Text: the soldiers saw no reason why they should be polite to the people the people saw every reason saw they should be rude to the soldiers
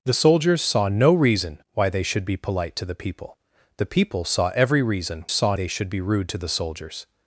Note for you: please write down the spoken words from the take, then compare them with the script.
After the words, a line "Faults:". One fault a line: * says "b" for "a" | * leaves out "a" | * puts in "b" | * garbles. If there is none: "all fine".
the soldiers saw no reason why they should be polite to the people the people saw every reason saw they should be rude to the soldiers
Faults:
all fine